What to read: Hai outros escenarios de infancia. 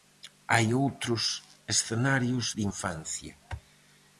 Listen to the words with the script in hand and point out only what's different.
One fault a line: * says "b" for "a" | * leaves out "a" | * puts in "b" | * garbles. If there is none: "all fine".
all fine